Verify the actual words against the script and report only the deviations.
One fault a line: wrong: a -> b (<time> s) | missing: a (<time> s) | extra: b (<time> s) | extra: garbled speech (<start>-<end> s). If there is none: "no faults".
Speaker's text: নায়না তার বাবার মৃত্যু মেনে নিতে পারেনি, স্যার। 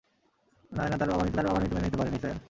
extra: তার বাবার মৃত্যু (1.3 s)